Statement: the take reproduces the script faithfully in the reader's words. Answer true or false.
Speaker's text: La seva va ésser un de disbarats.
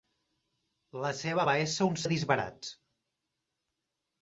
true